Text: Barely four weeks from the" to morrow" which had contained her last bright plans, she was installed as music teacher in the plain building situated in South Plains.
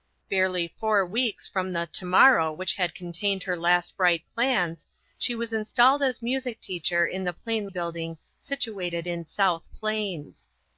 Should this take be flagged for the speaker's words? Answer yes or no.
no